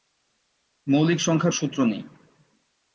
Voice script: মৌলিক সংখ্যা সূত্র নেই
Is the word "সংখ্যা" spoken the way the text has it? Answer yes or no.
yes